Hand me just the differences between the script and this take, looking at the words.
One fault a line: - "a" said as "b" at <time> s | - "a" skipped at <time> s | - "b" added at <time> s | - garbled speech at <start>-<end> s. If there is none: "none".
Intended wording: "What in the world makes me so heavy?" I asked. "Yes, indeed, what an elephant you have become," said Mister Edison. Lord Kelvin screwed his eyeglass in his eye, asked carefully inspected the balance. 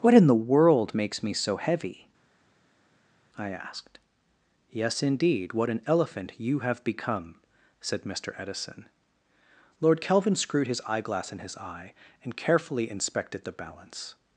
- "asked" said as "and" at 12.2 s